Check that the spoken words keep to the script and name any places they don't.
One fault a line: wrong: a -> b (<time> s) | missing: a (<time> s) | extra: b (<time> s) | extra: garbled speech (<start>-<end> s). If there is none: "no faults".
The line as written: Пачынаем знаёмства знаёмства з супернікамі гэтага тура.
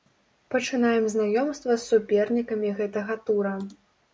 missing: знаёмства (1.7 s)